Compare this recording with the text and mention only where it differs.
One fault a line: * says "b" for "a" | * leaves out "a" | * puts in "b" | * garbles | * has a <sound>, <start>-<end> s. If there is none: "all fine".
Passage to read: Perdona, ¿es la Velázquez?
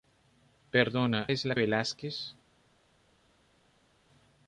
all fine